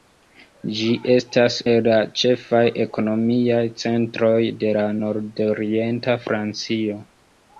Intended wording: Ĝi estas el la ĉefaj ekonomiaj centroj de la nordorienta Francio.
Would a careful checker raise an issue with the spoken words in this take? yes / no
no